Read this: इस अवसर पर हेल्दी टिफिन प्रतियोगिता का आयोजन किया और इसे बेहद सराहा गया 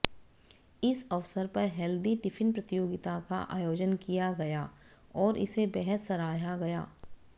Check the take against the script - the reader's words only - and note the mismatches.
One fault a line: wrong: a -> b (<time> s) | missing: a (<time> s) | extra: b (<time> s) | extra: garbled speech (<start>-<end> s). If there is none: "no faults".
extra: गया (4.4 s)